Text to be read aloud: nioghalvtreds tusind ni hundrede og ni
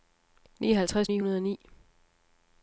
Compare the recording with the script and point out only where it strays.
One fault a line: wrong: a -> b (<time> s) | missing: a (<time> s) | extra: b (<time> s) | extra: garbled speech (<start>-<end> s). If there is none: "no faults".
missing: tusind (1.1 s)